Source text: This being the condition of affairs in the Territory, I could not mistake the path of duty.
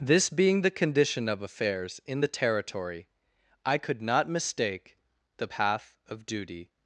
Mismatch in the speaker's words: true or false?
false